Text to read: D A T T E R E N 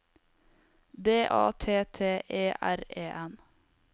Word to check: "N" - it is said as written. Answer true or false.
true